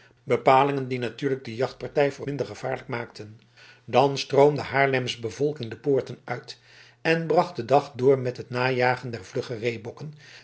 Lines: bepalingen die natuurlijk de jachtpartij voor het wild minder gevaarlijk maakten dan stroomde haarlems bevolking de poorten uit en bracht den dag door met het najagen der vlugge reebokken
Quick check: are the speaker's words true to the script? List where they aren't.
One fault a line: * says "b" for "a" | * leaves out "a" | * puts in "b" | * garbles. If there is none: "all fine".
* leaves out "het wild"